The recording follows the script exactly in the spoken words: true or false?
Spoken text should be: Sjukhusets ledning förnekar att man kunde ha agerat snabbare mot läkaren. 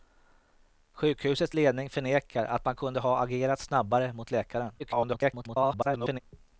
false